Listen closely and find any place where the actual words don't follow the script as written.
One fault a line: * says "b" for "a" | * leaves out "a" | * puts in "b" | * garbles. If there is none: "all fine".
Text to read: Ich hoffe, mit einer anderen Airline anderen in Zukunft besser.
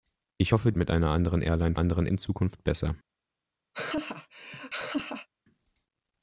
all fine